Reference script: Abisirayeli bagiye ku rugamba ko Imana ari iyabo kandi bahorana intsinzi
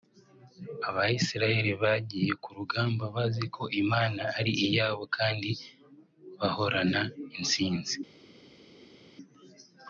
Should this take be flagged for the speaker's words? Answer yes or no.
yes